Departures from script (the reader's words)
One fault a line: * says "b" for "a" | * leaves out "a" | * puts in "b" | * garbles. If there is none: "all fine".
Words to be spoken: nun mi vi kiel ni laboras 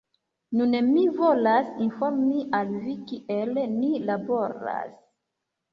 * puts in "volas informi al"